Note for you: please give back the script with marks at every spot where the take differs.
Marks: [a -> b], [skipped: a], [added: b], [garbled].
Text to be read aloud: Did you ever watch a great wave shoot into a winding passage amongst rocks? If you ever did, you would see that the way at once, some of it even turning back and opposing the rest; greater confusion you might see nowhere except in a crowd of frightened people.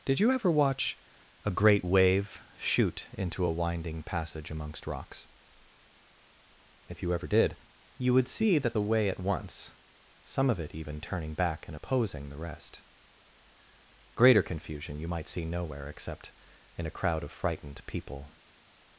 Did you ever watch a great wave shoot into a winding passage amongst rocks? If you ever did, you would see that the way at once, some of it even turning back and opposing the rest; greater confusion you might see nowhere except in a crowd of frightened people.